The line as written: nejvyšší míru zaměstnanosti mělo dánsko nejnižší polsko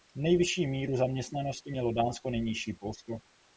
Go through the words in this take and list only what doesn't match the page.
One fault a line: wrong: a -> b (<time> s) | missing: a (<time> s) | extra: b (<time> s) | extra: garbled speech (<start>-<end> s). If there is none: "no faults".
no faults